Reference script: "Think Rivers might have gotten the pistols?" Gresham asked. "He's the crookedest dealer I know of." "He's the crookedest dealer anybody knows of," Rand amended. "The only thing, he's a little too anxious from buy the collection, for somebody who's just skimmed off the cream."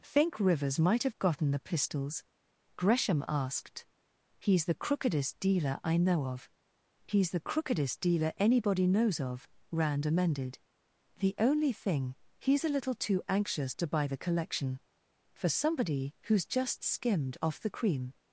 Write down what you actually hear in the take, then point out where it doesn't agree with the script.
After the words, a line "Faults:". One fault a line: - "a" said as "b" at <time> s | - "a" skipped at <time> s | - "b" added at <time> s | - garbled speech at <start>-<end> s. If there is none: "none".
"Think Rivers might have gotten the pistols?" Gresham asked. "He's the crookedest dealer I know of." "He's the crookedest dealer anybody knows of," Rand amended. "The only thing, he's a little too anxious to buy the collection, for somebody who's just skimmed off the cream."
Faults:
- "from" said as "to" at 13.8 s